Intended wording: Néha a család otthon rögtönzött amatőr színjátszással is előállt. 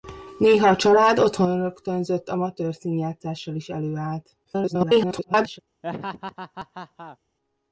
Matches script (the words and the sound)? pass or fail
fail